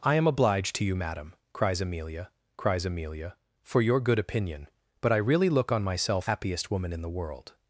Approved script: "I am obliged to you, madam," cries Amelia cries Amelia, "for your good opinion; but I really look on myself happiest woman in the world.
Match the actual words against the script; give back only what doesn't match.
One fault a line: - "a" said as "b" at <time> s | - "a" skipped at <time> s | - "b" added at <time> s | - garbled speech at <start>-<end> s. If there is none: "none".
none